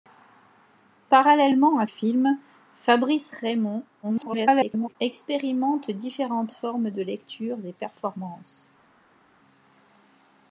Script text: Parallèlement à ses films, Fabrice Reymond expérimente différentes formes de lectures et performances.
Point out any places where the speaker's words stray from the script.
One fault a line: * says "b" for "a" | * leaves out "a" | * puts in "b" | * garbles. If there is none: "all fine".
* leaves out "ses"
* garbles